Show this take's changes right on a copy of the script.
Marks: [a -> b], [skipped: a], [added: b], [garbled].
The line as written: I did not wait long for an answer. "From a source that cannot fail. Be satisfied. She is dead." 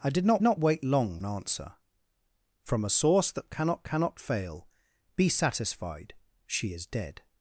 I did not [added: not] wait long [skipped: for] an answer. "From a source that cannot [added: cannot] fail. Be satisfied. She is dead."